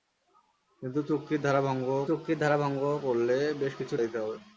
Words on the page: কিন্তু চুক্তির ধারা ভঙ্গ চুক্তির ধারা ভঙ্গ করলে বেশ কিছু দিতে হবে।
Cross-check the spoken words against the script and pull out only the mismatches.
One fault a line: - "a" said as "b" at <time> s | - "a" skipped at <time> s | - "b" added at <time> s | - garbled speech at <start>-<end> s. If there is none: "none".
none